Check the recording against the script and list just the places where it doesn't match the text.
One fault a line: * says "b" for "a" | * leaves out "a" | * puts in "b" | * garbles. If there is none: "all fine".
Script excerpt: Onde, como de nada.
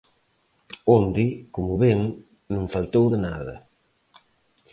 * puts in "ven non faltou"